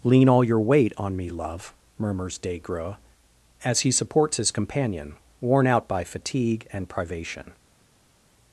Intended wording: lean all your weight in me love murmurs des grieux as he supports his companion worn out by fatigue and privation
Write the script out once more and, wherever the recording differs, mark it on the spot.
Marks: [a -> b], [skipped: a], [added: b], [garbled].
lean all your weight [in -> on] me love murmurs des grieux as he supports his companion worn out by fatigue and privation